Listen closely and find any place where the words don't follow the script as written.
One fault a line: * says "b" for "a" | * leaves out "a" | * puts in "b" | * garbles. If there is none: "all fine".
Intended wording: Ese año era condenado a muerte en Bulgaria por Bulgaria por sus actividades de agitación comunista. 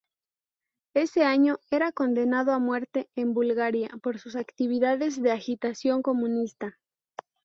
* leaves out "Bulgaria por"